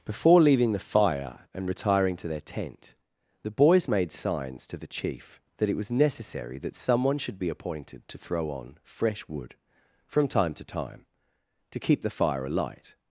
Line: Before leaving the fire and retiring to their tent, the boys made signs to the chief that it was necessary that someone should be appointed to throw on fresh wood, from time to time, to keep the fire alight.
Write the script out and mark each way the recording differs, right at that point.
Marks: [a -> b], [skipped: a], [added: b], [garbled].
Before leaving the fire and retiring to their tent, the boys made signs to the chief that it was necessary that someone should be appointed to throw on fresh wood, from time to time, to keep the fire alight.